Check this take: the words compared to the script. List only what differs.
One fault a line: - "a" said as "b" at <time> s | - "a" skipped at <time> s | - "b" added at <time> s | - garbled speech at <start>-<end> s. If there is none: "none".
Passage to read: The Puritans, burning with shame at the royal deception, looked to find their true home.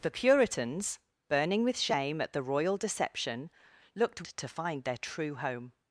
none